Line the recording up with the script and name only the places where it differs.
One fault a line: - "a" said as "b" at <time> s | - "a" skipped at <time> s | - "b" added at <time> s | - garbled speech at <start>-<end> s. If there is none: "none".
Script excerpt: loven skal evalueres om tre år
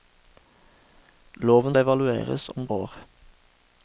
- "skal" skipped at 1.8 s
- "tre" skipped at 2.7 s